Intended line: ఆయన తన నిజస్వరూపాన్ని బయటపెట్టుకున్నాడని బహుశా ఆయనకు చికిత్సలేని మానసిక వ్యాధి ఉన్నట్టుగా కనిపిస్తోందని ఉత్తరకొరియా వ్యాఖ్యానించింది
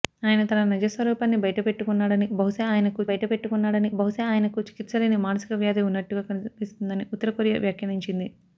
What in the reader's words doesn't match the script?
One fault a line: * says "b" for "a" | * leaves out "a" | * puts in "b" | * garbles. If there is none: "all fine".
* puts in "బయటపెట్టుకున్నాడని బహుశా ఆయనకు"